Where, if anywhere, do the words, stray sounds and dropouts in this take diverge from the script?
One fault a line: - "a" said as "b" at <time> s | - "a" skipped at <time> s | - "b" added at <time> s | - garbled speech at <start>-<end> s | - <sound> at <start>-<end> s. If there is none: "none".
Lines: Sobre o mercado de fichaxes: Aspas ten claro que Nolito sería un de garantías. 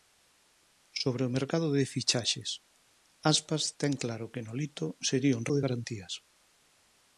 none